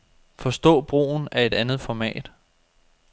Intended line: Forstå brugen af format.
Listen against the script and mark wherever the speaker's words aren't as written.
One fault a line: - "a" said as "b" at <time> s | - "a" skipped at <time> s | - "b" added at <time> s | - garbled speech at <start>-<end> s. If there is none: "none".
- "et andet" added at 1.4 s